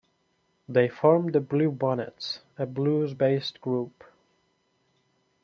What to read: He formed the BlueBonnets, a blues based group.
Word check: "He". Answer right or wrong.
wrong